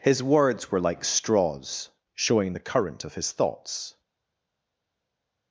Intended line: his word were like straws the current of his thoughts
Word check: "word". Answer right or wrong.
wrong